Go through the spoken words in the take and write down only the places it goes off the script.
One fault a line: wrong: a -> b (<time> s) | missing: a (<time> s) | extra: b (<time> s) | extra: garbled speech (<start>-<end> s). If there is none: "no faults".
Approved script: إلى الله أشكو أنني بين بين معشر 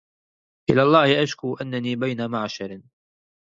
missing: بين (2.3 s)